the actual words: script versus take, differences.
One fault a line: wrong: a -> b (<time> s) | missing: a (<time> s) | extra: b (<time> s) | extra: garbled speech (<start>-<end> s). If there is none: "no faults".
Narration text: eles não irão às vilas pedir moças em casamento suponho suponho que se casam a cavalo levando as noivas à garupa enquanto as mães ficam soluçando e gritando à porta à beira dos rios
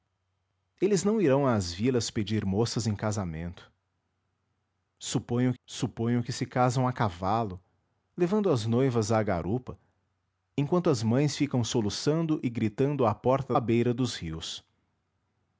no faults